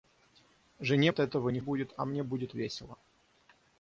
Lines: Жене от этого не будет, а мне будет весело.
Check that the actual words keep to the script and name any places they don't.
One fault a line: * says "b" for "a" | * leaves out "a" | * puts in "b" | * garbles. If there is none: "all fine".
all fine